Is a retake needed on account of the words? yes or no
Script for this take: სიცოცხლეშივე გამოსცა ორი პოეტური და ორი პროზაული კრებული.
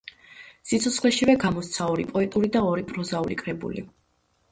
no